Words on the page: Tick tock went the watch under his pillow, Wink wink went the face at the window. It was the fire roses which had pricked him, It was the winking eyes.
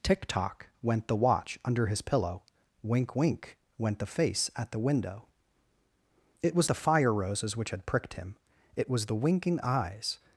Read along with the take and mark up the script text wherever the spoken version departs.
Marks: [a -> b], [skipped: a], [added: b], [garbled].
Tick tock went the watch under his pillow, Wink wink went the face at the window. It was the fire roses which had pricked him, It was the winking eyes.